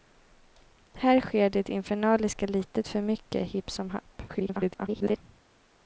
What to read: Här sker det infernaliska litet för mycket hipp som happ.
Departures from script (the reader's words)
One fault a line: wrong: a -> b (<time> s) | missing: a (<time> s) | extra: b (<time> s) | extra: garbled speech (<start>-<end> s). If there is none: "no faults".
extra: garbled speech (4.3-5.2 s)